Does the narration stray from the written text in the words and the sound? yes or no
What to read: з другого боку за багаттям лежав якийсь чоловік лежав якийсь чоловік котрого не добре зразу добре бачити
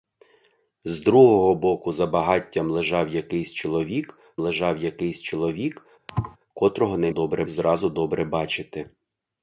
yes